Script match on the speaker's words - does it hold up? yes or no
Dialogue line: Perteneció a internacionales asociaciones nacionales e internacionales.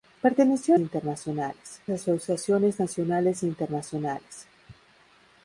yes